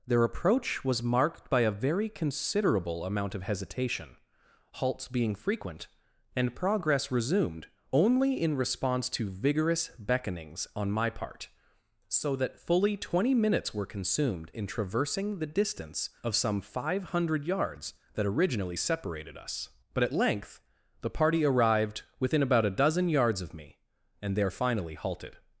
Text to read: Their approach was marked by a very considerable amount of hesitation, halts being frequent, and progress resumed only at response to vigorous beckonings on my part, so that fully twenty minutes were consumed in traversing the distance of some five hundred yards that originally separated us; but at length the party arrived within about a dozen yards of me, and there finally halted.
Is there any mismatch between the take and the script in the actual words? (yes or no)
yes